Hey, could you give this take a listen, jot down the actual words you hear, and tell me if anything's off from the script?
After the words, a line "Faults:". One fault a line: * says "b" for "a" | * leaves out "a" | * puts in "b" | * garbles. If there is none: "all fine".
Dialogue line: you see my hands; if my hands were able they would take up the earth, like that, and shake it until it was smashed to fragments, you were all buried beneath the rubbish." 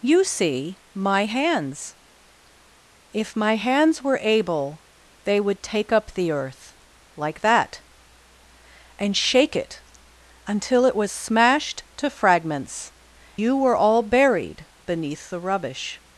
you see my hands; if my hands were able they would take up the earth, like that, and shake it until it was smashed to fragments, you were all buried beneath the rubbish."
Faults:
all fine